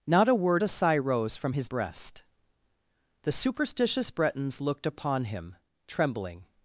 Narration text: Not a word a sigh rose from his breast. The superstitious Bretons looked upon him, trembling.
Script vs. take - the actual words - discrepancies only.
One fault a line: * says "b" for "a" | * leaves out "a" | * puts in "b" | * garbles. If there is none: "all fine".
all fine